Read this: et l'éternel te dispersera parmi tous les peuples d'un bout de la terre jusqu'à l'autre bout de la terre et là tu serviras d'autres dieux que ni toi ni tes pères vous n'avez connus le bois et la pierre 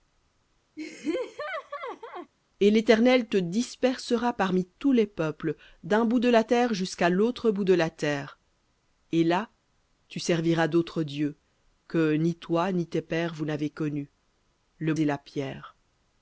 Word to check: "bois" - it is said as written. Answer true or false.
false